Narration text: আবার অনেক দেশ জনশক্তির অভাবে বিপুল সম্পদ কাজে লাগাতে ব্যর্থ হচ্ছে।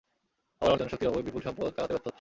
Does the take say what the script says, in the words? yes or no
no